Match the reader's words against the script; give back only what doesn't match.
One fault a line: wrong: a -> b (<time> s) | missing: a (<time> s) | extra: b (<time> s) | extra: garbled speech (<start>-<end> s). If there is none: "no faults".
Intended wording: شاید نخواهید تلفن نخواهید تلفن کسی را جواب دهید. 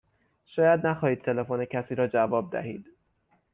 missing: نخواهید تلفن (1.6 s)